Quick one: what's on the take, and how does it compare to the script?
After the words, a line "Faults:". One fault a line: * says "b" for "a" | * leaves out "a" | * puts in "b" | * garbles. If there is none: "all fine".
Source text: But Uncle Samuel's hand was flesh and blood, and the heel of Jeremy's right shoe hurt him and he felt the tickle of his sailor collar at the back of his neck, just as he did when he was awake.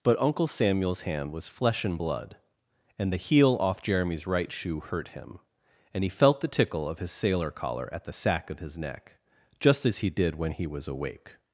But Uncle Samuel's hand was flesh and blood, and the heel off Jeremy's right shoe hurt him and he felt the tickle of his sailor collar at the sack of his neck, just as he did when he was awake.
Faults:
* says "off" for "of"
* says "sack" for "back"